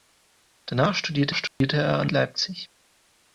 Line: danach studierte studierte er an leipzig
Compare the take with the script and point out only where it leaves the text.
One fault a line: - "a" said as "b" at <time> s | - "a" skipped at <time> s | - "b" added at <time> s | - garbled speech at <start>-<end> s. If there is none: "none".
none